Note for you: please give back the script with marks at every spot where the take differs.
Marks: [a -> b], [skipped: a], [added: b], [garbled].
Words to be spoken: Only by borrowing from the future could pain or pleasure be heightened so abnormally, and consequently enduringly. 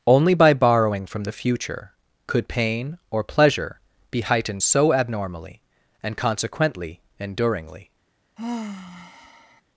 Only by borrowing from the future could pain or pleasure be heightened so abnormally, and consequently enduringly.